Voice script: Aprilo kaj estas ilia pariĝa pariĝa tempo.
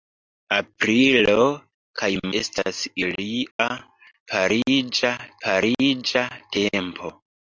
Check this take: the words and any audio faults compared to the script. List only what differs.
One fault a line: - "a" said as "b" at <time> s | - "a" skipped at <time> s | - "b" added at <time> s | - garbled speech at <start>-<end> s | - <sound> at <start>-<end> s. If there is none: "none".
- dropout at 3.5-3.6 s